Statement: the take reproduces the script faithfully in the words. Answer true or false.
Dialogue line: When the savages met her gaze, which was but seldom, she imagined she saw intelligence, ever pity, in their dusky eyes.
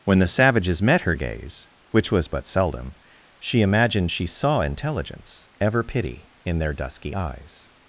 true